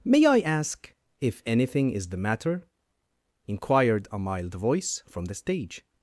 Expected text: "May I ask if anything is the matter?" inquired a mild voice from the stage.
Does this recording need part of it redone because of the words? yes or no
no